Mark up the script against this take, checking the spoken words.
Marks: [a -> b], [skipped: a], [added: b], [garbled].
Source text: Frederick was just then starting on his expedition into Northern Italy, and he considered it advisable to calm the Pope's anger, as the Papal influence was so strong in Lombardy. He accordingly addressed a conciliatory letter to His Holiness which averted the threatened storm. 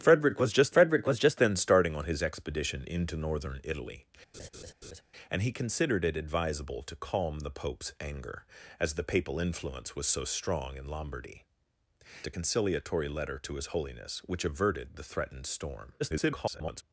Frederick was just [added: frederick was just] then starting on his expedition into Northern Italy, and he considered it advisable to calm the Pope's anger, as the Papal influence was so strong in Lombardy. [skipped: He accordingly addressed] a conciliatory letter to His Holiness which averted the threatened storm. [garbled]